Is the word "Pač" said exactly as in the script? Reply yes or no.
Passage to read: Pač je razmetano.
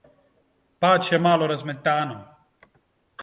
yes